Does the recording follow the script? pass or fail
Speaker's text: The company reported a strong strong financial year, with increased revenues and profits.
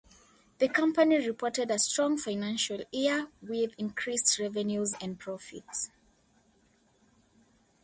fail